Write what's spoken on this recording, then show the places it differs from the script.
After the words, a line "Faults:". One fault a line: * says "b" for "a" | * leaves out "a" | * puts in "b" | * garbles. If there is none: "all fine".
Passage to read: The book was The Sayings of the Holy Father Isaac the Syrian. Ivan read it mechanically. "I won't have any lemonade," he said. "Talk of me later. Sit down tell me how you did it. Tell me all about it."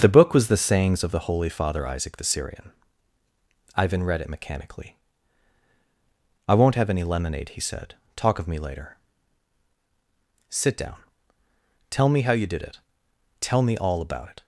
The book was The Sayings of the Holy Father Isaac the Syrian. Ivan read it mechanically. "I won't have any lemonade," he said. "Talk of me later. Sit down tell me how you did it. Tell me all about it."
Faults:
all fine